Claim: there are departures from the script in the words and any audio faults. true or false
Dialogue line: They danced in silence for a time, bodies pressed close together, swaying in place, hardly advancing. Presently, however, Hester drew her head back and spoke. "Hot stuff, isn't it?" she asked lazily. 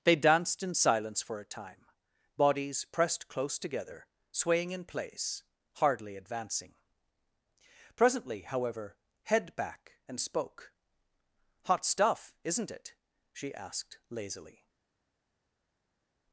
true